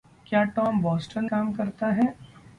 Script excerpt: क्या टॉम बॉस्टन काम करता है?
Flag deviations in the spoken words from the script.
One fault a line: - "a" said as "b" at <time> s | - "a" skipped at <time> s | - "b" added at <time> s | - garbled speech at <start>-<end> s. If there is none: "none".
none